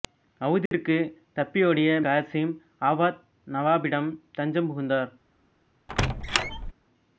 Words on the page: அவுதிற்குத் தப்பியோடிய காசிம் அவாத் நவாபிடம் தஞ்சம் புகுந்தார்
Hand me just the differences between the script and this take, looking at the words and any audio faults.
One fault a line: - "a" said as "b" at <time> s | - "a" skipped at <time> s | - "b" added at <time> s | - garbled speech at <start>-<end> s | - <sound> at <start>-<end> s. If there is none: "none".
- dropout at 0.7-0.7 s
- squeak at 5.9-6.7 s